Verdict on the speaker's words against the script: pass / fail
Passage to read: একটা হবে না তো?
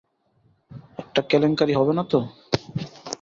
fail